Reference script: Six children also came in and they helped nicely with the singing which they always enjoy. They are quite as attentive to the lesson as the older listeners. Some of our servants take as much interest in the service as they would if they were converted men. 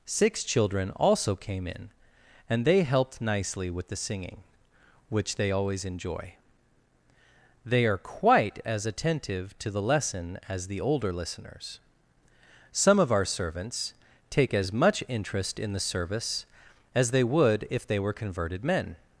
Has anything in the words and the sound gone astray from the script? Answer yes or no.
no